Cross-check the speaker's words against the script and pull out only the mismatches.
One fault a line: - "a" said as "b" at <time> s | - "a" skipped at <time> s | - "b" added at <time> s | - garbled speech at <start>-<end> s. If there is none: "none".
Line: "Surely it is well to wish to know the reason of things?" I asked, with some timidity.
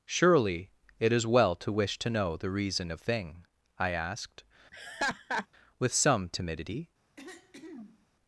- "things" said as "thing" at 3.0 s